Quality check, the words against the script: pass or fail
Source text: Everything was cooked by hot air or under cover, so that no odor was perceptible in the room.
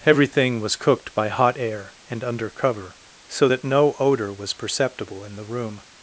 fail